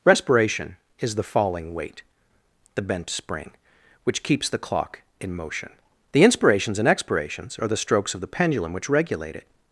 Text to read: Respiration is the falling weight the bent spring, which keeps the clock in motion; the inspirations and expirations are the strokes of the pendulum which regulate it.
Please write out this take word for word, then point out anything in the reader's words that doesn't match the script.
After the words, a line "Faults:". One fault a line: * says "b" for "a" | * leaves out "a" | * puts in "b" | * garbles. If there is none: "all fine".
Respiration is the falling weight the bent spring, which keeps the clock in motion; the inspirations and expirations are the strokes of the pendulum which regulate it.
Faults:
all fine